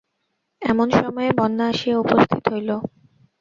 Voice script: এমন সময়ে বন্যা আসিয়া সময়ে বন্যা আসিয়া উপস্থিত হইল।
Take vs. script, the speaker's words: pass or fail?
fail